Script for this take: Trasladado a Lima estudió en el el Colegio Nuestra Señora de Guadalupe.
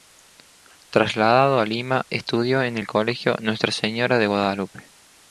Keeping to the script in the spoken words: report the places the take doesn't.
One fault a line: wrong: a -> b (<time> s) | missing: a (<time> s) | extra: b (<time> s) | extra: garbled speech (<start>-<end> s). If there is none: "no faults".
missing: el (2.9 s)